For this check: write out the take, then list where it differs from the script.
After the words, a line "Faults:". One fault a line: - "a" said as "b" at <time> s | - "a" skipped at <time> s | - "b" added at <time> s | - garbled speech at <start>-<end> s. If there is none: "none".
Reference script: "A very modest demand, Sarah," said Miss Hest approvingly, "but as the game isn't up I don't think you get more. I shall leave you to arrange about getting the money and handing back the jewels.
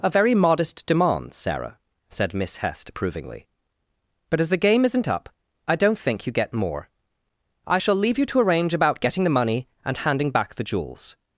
"A very modest demand, Sarah," said Miss Hest approvingly, "but as the game isn't up I don't think you get more. I shall leave you to arrange about getting the money and handing back the jewels.
Faults:
none